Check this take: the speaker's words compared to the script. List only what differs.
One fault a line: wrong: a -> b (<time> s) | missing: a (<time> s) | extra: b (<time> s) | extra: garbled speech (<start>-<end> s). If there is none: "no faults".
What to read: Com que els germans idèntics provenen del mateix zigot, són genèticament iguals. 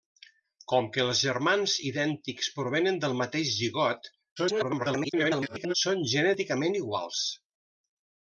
extra: garbled speech (4.4-5.7 s)